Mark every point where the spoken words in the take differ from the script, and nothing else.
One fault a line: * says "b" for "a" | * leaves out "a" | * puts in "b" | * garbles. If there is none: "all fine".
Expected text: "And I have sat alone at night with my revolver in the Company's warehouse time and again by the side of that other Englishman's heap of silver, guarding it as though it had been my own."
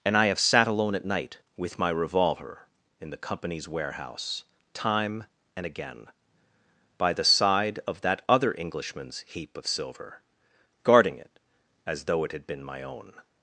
all fine